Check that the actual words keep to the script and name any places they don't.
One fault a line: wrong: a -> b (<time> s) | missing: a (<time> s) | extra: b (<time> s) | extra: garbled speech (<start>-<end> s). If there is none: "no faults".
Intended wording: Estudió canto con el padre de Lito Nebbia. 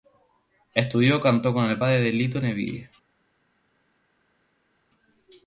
no faults